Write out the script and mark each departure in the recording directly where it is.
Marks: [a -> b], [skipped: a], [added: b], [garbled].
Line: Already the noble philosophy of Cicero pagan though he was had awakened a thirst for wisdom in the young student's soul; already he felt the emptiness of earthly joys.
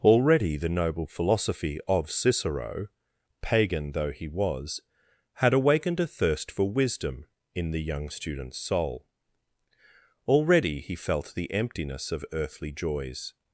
Already the noble philosophy of Cicero pagan though he was had awakened a thirst for wisdom in the young student's soul; already he felt the emptiness of earthly joys.